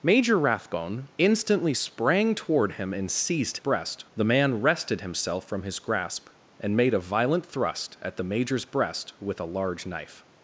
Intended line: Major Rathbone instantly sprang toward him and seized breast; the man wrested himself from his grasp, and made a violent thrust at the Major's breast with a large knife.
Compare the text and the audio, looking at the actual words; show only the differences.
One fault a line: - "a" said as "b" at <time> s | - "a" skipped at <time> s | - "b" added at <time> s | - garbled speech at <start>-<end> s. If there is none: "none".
none